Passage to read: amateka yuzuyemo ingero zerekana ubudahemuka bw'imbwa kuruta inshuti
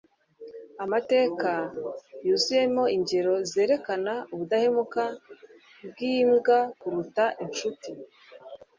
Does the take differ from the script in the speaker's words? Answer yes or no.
no